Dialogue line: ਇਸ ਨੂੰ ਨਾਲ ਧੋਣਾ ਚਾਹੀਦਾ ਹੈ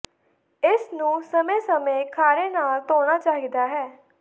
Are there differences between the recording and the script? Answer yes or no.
yes